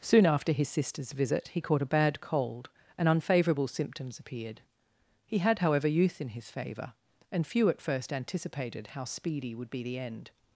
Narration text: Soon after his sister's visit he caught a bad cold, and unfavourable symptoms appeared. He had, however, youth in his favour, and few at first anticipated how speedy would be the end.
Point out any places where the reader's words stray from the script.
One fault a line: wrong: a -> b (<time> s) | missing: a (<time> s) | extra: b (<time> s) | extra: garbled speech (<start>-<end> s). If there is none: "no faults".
no faults